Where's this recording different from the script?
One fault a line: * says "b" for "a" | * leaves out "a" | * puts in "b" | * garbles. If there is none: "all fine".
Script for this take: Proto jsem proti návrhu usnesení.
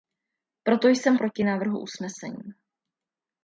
all fine